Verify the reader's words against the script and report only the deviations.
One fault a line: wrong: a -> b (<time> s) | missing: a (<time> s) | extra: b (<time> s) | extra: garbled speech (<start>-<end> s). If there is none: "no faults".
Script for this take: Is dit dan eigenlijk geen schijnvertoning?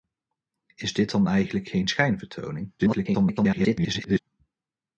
extra: garbled speech (2.8-4.2 s)